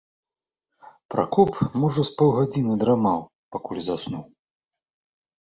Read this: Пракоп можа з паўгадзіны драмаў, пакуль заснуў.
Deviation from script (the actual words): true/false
false